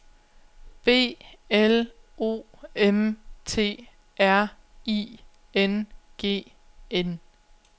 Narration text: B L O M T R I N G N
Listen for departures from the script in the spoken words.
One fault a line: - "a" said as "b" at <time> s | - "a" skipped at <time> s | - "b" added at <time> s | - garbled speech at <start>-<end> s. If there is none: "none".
none